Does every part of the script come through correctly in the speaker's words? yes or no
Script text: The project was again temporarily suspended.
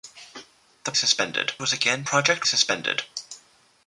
no